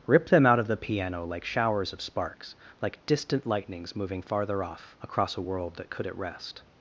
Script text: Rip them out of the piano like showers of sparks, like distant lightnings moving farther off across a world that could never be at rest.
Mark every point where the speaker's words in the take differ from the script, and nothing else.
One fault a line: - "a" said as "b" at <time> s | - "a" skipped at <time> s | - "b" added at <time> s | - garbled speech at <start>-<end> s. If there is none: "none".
- "never be" skipped at 6.1 s